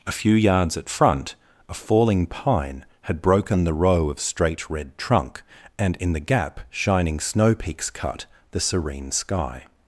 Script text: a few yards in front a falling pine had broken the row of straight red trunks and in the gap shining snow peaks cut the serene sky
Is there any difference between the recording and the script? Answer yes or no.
yes